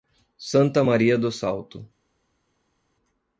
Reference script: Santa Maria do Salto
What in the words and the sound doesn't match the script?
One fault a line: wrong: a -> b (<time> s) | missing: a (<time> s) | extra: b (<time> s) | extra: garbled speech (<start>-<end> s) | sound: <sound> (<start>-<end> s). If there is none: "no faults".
no faults